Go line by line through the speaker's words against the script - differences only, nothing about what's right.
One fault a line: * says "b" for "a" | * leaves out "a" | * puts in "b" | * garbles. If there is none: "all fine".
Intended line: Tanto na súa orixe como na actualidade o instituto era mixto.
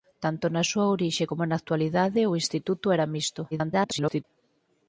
* garbles